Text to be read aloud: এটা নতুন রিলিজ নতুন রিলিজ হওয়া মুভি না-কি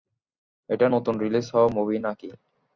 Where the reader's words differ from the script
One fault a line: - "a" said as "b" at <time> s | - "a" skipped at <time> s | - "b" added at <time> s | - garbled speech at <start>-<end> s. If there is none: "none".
- "নতুন রিলিজ" skipped at 1.5 s